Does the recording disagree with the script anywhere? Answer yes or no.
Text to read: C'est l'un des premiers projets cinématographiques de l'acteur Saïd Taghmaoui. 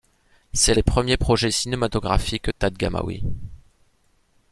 yes